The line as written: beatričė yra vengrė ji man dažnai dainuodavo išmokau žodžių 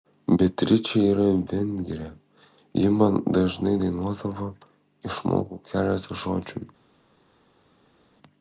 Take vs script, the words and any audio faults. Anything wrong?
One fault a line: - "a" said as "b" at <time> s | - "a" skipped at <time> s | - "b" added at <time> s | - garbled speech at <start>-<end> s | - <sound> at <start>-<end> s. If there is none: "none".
- "keletą" added at 5.7 s